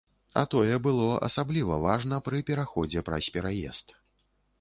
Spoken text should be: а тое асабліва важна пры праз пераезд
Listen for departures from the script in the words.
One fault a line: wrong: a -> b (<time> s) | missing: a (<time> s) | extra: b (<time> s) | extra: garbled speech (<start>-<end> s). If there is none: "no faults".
extra: было (0.8 s)
extra: пераходзе (2.5 s)